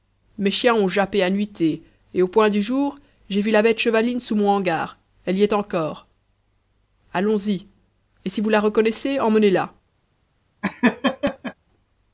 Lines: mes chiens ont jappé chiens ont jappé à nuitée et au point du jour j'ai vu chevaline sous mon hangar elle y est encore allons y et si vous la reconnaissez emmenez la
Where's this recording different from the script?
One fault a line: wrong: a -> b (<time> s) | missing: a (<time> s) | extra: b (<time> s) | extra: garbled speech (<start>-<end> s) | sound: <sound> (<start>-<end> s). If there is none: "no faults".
missing: chiens ont jappé (1.2 s)
extra: la bête (3.5 s)
sound: laugh (10.6-11.5 s)